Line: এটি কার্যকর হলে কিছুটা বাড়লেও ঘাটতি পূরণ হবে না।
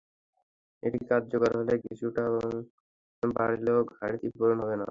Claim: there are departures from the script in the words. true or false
false